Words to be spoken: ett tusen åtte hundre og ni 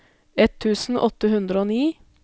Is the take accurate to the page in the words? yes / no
yes